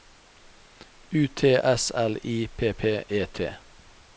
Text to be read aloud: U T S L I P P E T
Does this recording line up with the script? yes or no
yes